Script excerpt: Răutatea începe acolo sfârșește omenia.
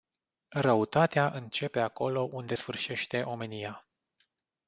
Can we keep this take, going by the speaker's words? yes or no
no